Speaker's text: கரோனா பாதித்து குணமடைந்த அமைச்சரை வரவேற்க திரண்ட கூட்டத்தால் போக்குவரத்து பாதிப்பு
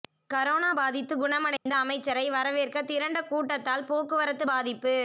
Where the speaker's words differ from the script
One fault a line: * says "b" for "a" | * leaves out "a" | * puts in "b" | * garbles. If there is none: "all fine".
all fine